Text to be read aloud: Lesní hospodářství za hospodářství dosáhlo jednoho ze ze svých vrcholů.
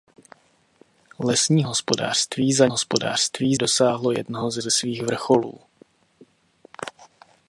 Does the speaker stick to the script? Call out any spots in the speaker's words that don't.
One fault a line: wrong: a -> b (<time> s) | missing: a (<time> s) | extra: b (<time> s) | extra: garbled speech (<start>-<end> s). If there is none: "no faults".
no faults